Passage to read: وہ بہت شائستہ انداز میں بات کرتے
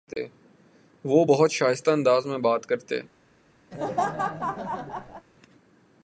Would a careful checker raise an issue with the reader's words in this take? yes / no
no